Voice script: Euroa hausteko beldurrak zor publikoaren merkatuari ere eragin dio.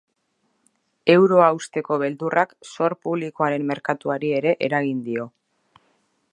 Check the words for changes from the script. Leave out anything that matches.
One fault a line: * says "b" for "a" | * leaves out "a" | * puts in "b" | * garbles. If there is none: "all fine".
all fine